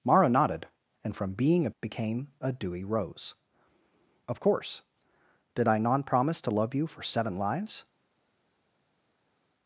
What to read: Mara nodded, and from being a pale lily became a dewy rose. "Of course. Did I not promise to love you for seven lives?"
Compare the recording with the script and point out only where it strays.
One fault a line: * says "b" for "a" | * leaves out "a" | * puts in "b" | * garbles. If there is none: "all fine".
* leaves out "pale lily"